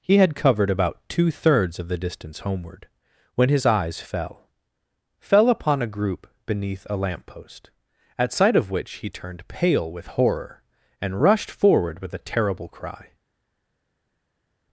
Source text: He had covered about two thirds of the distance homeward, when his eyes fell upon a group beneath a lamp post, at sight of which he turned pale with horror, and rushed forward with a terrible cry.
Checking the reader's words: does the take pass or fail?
fail